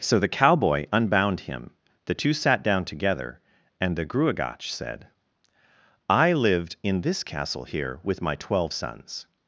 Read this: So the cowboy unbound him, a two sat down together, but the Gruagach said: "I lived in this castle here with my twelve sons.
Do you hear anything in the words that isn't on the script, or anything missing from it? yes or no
yes